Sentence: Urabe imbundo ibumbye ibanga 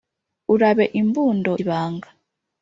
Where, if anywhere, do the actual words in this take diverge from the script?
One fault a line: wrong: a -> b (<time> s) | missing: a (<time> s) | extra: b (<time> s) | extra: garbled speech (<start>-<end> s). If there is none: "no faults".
missing: ibumbye (1.5 s)